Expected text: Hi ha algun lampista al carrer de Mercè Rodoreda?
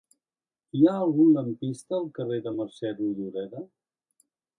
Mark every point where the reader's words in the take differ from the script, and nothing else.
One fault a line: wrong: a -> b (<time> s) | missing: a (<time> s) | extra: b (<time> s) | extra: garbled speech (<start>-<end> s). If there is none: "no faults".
no faults